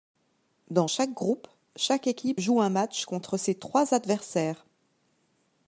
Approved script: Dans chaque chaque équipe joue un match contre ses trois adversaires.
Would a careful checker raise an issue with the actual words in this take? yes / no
yes